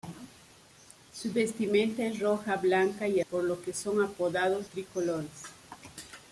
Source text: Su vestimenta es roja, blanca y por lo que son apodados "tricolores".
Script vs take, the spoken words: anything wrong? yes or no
no